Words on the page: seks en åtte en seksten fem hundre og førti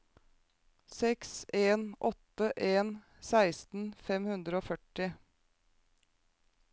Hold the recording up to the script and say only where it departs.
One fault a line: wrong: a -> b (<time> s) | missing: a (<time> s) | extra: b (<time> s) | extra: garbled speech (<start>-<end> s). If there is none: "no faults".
no faults